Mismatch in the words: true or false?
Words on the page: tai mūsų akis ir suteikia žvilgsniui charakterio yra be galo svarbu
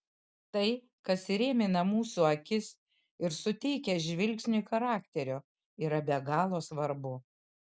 true